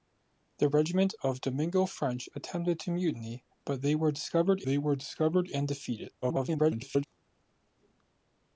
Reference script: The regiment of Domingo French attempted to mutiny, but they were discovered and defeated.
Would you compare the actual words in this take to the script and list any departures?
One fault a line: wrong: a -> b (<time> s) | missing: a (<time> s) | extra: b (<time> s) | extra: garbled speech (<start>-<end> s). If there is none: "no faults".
extra: they were discovered (4.7 s)
extra: garbled speech (6.2-7.0 s)